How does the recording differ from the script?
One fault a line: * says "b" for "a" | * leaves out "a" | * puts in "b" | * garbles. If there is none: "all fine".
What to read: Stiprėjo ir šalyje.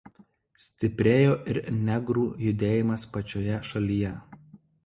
* puts in "negrų judėjimas pačioje"